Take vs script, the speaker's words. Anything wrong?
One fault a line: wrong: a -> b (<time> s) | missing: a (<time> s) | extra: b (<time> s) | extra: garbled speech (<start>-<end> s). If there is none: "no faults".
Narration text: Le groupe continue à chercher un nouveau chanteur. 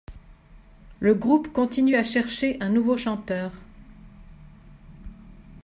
no faults